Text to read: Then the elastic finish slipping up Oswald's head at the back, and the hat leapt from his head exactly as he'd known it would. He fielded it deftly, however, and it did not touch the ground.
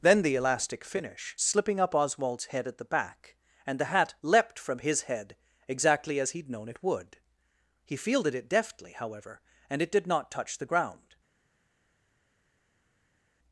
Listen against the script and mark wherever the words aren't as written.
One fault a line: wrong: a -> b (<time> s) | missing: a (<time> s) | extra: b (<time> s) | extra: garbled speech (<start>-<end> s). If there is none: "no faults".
no faults